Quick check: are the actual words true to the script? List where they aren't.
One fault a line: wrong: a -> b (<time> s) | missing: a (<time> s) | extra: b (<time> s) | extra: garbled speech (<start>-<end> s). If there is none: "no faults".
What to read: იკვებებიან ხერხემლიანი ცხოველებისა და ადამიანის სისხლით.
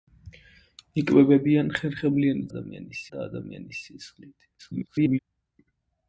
wrong: ცხოველებისა -> ადამიანის (2.5 s)
extra: garbled speech (4.6-5.2 s)